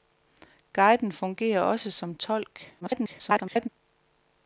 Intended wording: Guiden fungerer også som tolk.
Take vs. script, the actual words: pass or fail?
fail